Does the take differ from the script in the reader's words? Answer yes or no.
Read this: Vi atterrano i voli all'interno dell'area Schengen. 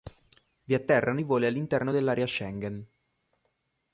no